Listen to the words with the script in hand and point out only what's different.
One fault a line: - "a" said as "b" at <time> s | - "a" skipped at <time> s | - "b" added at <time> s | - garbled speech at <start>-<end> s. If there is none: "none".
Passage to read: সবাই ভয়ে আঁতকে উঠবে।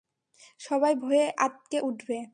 none